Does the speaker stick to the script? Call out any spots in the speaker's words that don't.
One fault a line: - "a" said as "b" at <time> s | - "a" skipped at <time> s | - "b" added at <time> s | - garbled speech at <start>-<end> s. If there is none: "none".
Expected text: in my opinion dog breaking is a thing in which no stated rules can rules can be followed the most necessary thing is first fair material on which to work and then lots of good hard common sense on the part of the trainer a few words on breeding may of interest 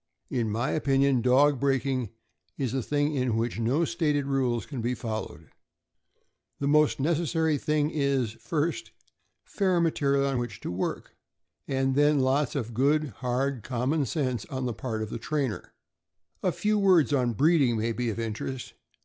- "rules can" skipped at 4.8 s
- "be" added at 17.9 s